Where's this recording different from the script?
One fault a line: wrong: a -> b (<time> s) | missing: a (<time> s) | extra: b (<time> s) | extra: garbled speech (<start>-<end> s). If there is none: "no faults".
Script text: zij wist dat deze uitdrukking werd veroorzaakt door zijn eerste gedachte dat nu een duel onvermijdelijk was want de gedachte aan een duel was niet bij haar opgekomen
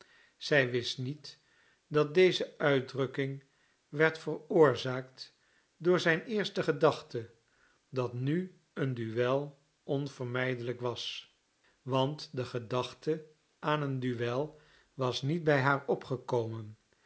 extra: niet (1.0 s)